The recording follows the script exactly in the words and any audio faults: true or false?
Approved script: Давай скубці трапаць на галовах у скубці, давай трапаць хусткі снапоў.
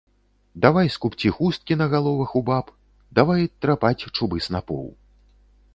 false